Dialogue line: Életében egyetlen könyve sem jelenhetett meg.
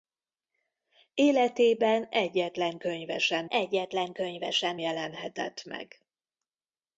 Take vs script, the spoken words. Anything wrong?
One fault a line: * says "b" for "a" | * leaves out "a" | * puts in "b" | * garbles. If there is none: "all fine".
* puts in "egyetlen könyve sem"